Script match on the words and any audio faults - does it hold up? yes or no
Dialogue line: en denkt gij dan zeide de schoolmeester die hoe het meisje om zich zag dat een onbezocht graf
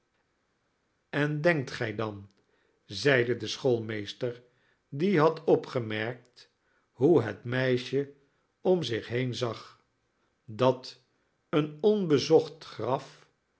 no